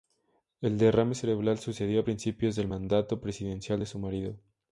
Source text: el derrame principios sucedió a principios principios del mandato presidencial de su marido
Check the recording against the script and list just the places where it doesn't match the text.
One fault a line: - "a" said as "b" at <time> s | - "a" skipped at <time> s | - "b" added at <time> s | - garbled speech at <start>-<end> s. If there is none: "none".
- "principios" said as "cerebral" at 1.1 s
- "principios" skipped at 2.6 s